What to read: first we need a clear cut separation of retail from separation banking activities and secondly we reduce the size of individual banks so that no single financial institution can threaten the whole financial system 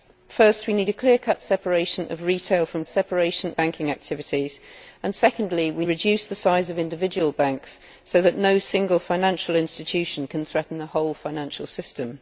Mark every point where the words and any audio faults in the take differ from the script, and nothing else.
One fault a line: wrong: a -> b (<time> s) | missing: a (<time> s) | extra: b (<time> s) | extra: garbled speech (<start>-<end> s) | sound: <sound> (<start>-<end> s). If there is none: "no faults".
no faults